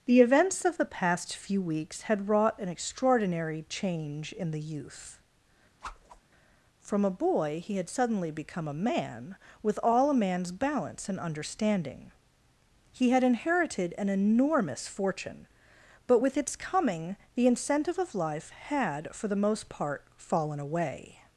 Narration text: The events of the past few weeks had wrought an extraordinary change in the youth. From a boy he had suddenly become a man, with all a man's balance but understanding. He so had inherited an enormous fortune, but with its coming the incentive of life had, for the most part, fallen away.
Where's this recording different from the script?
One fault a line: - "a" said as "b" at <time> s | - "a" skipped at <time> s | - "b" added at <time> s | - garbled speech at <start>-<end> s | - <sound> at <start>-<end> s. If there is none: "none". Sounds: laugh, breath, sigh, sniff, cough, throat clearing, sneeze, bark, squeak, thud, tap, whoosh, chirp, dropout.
- whoosh at 5.8-6.2 s
- "but" said as "and" at 11.1 s
- "so" skipped at 13.1 s